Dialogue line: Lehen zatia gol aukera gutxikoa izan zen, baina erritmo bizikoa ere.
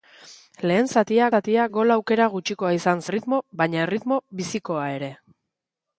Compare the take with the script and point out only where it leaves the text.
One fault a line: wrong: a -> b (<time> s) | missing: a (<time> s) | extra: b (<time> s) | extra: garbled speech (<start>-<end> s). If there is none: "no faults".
extra: zatia (1.4 s)
wrong: zen -> erritmo (3.1 s)